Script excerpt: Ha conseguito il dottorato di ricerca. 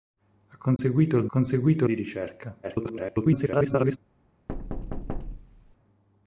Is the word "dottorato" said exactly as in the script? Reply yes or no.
no